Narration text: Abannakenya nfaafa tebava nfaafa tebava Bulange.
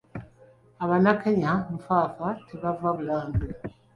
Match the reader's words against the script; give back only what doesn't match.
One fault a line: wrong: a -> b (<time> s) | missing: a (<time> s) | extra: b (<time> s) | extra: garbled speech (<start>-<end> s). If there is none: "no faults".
missing: nfaafa tebava (2.9 s)